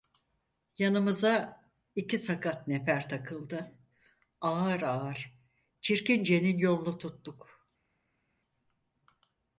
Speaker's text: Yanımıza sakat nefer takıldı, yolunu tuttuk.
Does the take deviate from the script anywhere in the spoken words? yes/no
yes